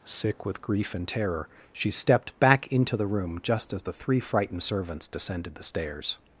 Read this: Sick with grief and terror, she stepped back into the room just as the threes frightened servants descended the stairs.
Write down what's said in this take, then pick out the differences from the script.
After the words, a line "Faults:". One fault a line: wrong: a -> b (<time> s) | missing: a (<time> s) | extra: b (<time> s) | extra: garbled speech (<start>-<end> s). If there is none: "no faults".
Sick with grief and terror, she stepped back into the room just as the three frightened servants descended the stairs.
Faults:
wrong: threes -> three (3.9 s)